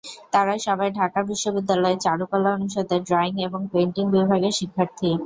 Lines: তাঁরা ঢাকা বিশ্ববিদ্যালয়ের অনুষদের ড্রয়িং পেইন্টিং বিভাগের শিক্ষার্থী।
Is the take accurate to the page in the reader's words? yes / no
no